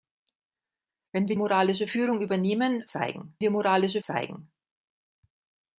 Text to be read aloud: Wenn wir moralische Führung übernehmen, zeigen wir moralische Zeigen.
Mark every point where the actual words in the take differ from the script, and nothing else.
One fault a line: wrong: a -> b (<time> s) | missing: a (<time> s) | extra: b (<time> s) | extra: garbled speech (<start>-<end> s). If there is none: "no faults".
no faults